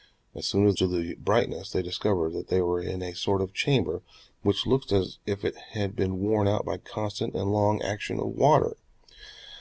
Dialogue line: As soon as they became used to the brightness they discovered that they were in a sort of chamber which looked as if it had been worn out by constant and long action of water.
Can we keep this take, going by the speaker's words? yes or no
no